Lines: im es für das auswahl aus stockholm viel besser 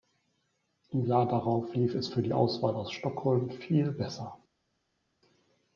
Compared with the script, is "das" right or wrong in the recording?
wrong